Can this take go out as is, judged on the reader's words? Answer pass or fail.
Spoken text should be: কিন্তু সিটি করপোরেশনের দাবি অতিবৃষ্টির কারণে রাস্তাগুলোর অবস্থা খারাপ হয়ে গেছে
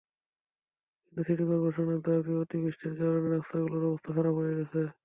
pass